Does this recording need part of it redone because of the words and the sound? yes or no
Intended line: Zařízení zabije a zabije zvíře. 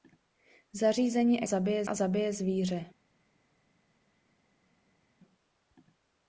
no